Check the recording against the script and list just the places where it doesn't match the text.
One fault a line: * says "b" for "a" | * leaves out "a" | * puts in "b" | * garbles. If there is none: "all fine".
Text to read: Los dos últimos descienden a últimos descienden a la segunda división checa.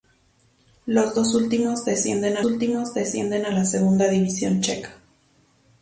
all fine